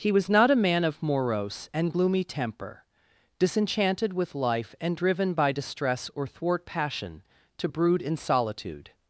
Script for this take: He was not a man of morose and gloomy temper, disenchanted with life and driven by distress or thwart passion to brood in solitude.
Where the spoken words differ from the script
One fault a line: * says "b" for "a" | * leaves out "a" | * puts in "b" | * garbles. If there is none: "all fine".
all fine